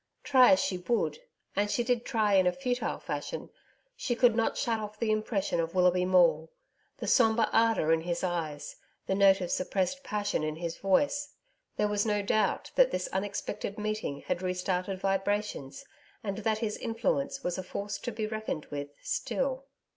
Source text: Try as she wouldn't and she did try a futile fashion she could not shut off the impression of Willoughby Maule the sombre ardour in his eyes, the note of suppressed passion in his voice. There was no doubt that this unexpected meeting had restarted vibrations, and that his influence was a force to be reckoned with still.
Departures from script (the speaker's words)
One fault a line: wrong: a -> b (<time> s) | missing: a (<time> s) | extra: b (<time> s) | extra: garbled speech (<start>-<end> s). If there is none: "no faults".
wrong: wouldn't -> would (0.8 s)
extra: in (2.3 s)